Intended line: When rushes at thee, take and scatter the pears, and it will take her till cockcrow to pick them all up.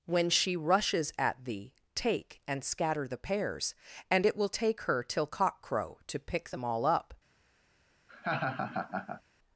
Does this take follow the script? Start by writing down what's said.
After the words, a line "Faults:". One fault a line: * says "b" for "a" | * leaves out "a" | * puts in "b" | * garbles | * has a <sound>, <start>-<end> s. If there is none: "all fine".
When she rushes at thee, take and scatter the pears, and it will take her till cockcrow to pick them all up.
Faults:
* puts in "she"
* has a laugh, 8.1-9.2 s